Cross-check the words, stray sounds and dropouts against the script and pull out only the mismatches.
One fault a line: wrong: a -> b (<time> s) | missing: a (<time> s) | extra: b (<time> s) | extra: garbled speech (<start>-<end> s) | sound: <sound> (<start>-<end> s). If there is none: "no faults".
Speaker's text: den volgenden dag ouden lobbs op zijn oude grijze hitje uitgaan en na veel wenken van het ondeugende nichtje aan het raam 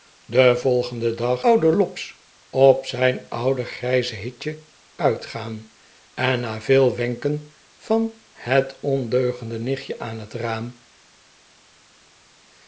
no faults